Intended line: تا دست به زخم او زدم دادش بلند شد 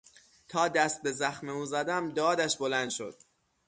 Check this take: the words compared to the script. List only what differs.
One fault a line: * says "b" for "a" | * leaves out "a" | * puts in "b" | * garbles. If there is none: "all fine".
all fine